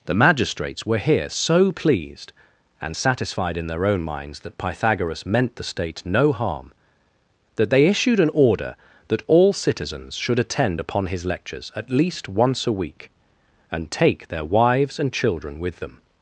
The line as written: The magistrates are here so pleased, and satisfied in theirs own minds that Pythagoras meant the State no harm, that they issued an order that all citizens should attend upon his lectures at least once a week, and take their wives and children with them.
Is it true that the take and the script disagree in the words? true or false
true